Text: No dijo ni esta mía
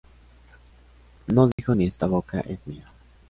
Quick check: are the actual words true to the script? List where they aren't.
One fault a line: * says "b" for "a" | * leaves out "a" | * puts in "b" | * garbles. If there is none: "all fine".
* puts in "boca es"